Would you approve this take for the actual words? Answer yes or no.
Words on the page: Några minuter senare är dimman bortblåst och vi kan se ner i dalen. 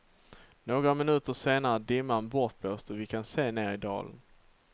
yes